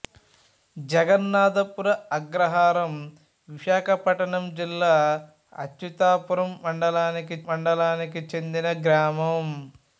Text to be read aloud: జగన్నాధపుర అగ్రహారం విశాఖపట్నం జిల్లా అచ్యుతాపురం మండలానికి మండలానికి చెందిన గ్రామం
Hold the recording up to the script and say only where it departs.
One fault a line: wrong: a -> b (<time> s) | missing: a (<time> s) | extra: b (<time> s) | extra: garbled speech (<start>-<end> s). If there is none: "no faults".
no faults